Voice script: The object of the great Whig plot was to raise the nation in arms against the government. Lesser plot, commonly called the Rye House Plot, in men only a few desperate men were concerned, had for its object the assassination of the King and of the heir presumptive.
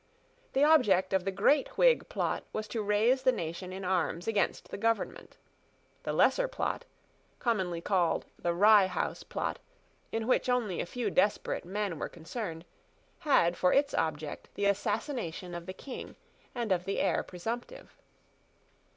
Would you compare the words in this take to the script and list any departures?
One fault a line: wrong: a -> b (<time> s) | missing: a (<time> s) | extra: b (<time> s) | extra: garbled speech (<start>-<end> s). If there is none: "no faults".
extra: The (6.0 s)
wrong: men -> which (10.2 s)